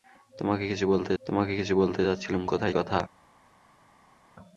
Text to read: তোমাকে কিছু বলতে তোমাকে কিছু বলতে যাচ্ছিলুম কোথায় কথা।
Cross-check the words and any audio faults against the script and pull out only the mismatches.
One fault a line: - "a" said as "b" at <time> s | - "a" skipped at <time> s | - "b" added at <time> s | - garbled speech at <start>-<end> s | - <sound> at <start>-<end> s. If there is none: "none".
none